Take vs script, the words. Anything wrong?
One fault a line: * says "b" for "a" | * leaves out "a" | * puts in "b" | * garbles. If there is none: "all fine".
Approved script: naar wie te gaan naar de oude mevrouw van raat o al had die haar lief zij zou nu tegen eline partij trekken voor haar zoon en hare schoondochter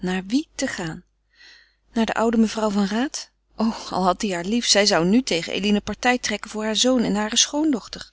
all fine